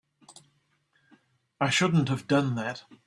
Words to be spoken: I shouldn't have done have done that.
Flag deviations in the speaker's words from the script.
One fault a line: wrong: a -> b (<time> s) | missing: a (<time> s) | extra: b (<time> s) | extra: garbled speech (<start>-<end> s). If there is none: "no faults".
missing: have done (2.5 s)